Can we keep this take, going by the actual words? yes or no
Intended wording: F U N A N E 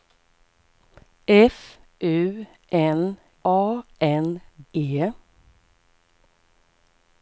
yes